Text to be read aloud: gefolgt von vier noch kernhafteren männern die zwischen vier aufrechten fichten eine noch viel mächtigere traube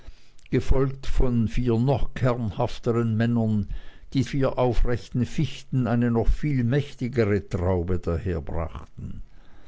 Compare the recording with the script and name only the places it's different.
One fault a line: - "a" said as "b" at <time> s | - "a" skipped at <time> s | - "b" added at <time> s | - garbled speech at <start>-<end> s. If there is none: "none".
- "zwischen" skipped at 4.2 s